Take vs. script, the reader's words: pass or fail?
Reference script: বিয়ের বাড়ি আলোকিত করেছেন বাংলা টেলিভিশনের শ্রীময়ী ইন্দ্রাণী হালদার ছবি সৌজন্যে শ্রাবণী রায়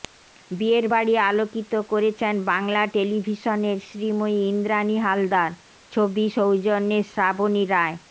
pass